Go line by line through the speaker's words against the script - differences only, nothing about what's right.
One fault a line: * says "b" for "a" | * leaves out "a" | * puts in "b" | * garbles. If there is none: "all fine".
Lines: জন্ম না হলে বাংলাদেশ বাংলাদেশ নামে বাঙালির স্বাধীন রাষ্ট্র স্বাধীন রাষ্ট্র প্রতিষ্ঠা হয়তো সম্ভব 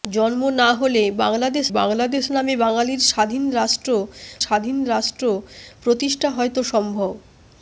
all fine